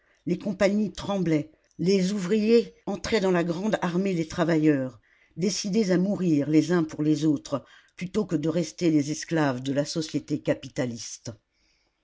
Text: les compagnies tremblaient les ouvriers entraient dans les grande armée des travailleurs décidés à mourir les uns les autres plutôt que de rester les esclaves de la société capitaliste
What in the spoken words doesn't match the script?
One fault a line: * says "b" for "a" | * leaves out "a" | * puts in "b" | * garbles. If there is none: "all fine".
* says "la" for "les"
* puts in "pour"